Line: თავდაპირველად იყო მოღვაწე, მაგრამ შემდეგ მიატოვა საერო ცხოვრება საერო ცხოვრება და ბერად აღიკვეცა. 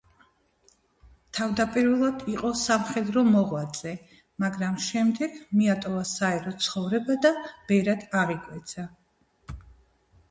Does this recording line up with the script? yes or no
no